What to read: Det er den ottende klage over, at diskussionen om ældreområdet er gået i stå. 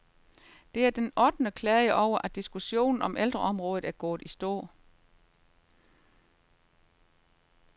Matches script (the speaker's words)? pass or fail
pass